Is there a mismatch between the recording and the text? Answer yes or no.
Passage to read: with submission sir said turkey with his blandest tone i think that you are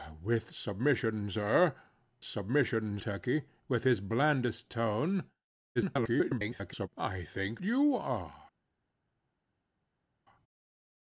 yes